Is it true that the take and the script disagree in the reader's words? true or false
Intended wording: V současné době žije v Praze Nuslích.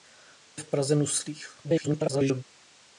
true